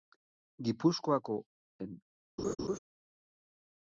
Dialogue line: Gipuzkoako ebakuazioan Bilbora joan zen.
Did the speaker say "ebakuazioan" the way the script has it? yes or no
no